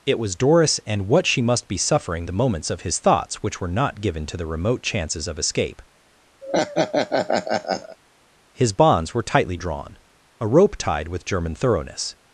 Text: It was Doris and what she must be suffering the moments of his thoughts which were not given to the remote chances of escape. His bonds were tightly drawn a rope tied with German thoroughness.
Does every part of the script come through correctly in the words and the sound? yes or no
no